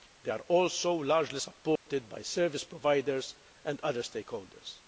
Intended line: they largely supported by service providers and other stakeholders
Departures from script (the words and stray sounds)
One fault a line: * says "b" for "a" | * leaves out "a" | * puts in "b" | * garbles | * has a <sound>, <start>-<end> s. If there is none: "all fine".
* puts in "are also"
* has a dropout, 1.8-1.9 s